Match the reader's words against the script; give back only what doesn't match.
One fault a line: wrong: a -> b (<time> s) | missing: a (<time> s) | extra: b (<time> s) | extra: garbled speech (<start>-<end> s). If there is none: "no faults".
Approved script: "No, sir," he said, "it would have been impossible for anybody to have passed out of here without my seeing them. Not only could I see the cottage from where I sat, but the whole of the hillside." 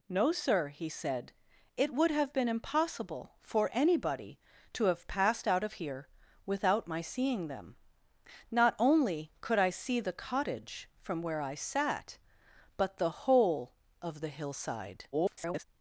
extra: garbled speech (15.1-15.6 s)